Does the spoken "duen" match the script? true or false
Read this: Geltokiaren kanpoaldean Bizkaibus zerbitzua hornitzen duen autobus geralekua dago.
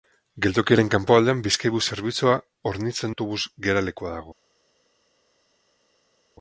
false